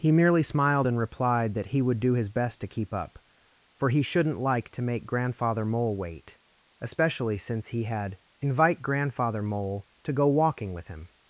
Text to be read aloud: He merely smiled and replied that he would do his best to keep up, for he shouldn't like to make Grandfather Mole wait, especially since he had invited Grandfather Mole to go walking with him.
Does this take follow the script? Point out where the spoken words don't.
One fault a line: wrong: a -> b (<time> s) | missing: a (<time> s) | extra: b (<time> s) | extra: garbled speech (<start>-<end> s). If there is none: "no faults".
wrong: invited -> invite (8.4 s)